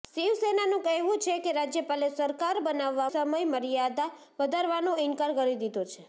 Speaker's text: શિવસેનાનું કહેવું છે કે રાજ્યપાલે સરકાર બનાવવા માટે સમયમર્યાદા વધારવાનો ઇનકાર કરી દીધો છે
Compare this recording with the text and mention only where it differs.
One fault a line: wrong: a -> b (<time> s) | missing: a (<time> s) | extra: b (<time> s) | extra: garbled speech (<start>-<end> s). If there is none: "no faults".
missing: માટે (3.1 s)